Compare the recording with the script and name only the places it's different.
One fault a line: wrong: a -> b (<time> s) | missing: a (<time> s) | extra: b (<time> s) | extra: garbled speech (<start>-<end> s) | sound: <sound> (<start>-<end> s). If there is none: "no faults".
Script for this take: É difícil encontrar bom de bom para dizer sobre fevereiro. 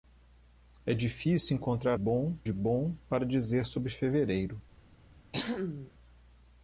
sound: throat clearing (5.3-5.9 s)